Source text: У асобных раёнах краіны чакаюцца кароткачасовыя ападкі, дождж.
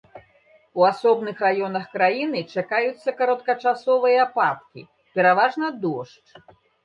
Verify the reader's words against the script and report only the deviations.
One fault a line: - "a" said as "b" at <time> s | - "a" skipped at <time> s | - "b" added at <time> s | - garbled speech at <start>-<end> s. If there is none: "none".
- "пераважна" added at 5.2 s